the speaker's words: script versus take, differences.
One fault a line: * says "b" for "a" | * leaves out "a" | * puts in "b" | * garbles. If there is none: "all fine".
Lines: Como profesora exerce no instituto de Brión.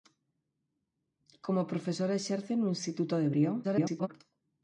* garbles